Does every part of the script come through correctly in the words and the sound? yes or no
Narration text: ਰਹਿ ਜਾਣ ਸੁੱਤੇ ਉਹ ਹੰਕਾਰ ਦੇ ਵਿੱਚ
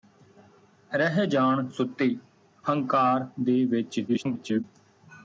no